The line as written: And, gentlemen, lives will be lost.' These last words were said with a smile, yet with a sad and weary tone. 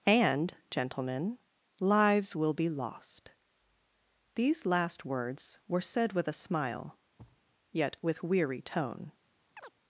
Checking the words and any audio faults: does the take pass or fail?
fail